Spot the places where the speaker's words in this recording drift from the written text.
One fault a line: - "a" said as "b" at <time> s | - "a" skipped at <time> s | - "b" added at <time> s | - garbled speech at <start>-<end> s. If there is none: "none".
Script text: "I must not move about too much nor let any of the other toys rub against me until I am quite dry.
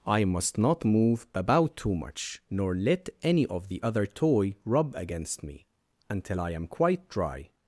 - "toys" said as "toy" at 4.1 s